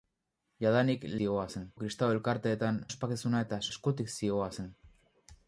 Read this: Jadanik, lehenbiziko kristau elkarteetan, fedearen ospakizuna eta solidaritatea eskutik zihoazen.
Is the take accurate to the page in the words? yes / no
no